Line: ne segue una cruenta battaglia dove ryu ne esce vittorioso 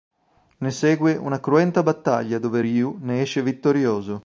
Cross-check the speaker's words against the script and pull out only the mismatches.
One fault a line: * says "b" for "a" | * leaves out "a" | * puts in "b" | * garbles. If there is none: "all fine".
all fine